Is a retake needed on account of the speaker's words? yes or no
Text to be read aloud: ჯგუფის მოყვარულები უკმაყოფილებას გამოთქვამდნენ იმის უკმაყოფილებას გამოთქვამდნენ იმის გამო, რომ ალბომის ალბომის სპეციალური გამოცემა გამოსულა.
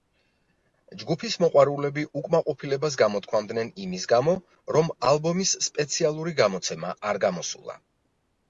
yes